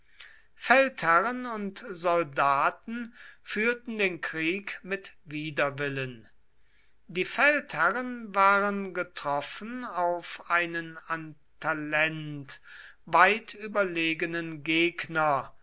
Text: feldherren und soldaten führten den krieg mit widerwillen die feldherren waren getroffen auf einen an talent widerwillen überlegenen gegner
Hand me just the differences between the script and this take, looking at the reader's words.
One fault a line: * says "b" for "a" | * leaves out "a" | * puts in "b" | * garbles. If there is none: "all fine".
* says "weit" for "widerwillen"